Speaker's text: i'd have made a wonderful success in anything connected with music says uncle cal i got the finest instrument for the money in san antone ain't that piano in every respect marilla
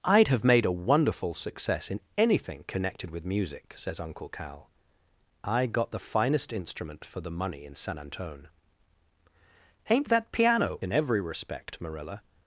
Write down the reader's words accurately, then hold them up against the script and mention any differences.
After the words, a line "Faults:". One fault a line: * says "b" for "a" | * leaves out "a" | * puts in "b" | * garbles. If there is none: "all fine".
i'd have made a wonderful success in anything connected with music says uncle cal i got the finest instrument for the money in san antone ain't that piano in every respect marilla
Faults:
all fine